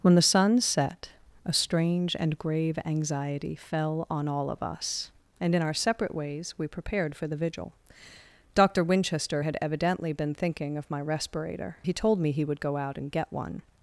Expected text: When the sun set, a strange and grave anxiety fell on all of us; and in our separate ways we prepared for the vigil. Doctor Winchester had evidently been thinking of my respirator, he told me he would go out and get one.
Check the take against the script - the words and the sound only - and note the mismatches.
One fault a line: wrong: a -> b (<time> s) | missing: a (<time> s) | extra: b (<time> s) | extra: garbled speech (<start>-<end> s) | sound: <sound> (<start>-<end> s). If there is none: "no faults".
no faults